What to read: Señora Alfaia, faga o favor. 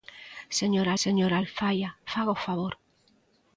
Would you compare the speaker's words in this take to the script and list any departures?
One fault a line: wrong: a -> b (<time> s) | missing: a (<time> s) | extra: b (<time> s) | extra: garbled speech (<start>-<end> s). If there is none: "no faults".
extra: señora (1.0 s)